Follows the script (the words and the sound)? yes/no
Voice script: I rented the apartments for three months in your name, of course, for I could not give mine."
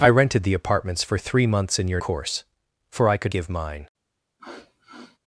no